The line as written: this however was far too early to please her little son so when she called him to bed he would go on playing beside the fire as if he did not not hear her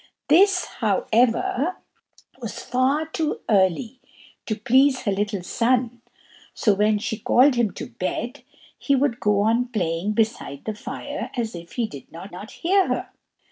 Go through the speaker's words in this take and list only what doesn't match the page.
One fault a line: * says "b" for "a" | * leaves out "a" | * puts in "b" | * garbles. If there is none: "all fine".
all fine